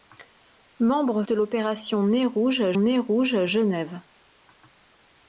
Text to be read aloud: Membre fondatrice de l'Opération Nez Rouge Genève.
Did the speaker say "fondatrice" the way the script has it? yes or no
no